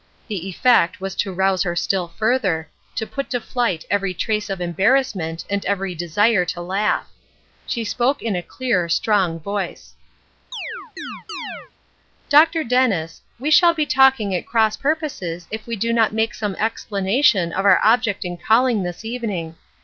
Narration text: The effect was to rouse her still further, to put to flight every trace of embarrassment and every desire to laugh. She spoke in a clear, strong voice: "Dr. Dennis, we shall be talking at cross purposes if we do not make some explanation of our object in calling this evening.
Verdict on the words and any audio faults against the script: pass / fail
fail